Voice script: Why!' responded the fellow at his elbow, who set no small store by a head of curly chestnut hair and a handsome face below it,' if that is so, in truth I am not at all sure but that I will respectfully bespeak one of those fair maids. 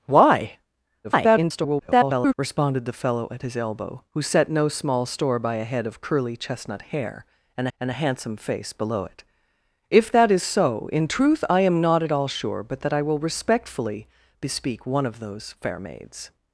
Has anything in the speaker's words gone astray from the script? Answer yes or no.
yes